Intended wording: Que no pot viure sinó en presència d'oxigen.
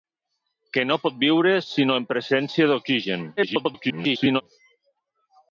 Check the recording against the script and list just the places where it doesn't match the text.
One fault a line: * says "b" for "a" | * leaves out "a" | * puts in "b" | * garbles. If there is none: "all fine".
* garbles